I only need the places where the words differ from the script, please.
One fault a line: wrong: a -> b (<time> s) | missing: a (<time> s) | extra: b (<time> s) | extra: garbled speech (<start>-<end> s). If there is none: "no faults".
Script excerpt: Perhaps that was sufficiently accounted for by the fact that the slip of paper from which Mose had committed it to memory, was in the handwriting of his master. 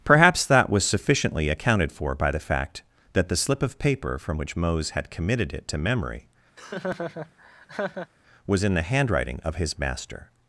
no faults